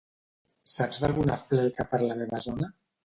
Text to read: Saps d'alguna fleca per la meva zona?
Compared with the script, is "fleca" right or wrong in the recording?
right